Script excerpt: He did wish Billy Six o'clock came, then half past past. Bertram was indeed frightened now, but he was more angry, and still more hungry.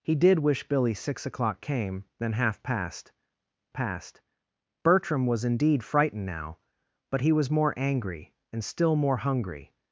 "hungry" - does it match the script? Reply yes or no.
yes